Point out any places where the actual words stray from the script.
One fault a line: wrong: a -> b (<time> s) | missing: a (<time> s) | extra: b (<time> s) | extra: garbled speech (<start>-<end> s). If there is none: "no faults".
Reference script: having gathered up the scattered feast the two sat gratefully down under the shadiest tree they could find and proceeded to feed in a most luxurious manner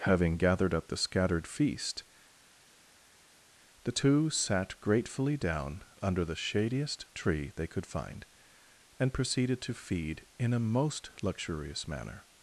no faults